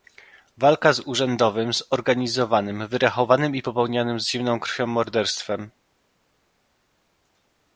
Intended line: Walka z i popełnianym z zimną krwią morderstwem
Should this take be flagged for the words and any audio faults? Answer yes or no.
yes